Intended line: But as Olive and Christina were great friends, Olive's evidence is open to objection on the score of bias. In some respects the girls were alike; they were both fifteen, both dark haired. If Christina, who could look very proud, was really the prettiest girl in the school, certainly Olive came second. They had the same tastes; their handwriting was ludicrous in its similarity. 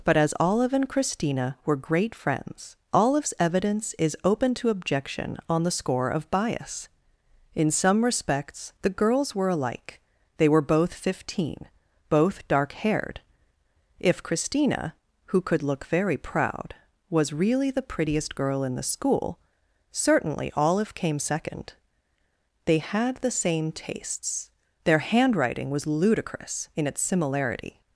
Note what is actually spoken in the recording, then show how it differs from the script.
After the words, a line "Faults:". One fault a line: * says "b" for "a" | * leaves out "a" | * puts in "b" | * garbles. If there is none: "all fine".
But as Olive and Christina were great friends, Olive's evidence is open to objection on the score of bias. In some respects the girls were alike; they were both fifteen, both dark haired. If Christina, who could look very proud, was really the prettiest girl in the school, certainly Olive came second. They had the same tastes; their handwriting was ludicrous in its similarity.
Faults:
all fine